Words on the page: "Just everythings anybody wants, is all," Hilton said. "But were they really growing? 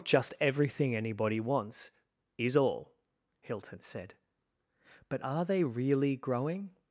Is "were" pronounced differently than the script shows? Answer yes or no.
yes